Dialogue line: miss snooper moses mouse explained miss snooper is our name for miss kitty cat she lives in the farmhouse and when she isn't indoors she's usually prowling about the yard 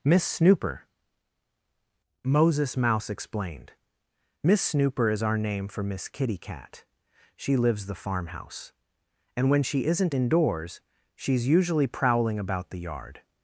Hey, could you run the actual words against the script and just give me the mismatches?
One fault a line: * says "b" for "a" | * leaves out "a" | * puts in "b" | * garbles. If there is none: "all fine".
* leaves out "in"